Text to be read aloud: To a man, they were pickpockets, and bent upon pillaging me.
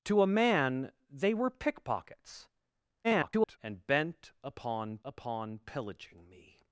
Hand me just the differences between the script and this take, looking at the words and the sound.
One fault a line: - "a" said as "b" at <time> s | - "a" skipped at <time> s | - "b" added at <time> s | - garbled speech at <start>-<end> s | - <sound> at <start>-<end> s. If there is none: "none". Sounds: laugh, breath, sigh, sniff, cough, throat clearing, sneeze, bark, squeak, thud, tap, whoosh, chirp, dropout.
- garbled speech at 3.0-3.6 s
- "upon" added at 5.0 s